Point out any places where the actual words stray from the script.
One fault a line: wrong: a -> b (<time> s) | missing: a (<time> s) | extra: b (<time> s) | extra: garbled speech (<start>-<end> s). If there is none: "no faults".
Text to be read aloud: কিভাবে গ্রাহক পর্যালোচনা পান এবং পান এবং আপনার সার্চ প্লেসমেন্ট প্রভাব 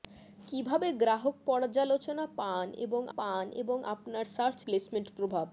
no faults